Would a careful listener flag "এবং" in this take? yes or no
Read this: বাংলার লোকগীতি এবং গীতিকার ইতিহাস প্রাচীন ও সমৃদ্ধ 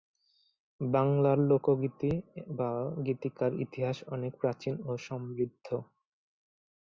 yes